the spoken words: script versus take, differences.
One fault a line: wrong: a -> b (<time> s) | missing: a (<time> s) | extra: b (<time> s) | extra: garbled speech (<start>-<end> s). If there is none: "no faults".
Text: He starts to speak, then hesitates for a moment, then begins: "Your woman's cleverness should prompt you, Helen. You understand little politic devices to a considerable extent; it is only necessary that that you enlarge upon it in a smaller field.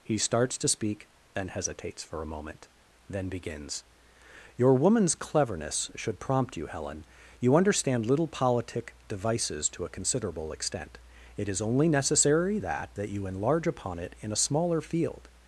no faults